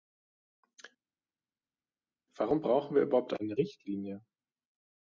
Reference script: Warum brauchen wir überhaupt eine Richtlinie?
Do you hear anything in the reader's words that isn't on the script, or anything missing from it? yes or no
no